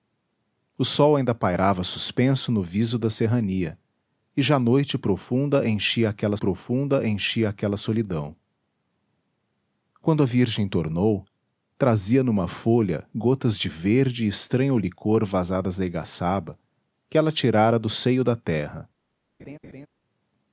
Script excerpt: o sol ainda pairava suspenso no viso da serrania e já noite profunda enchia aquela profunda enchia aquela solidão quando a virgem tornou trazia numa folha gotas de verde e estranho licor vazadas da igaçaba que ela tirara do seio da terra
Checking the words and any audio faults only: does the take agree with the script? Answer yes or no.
no